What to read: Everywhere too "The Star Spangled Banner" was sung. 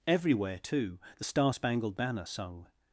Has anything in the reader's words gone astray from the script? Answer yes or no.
yes